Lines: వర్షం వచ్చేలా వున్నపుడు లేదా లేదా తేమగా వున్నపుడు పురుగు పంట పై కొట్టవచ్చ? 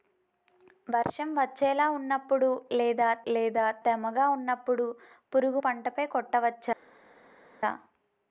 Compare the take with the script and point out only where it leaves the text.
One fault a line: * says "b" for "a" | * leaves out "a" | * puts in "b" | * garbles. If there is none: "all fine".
all fine